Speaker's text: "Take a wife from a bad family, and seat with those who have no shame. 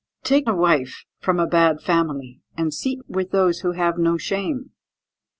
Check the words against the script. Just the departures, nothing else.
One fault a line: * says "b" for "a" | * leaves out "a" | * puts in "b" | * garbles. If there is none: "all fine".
all fine